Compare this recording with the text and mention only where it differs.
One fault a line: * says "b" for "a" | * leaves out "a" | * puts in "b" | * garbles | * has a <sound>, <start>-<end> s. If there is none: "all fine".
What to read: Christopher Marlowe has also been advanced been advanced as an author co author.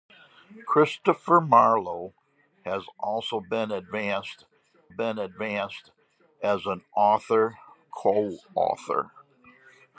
all fine